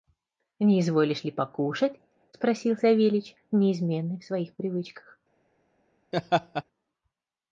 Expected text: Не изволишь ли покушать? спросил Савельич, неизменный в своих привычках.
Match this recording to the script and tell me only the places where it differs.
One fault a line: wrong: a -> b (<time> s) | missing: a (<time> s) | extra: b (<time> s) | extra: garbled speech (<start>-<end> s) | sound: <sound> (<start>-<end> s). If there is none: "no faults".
sound: laugh (6.1-6.6 s)